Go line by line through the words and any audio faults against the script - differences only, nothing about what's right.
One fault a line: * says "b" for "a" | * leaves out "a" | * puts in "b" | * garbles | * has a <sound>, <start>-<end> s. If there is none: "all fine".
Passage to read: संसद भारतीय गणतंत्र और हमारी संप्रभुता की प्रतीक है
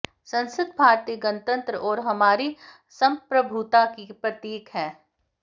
all fine